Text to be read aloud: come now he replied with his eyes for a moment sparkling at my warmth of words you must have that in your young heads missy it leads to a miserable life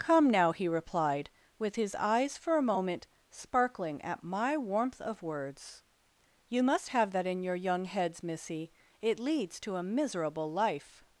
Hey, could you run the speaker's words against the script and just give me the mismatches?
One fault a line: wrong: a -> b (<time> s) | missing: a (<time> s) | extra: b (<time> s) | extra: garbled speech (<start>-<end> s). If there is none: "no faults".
no faults